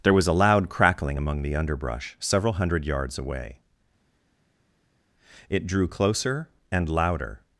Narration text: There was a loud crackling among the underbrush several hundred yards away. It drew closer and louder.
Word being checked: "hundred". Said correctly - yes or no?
yes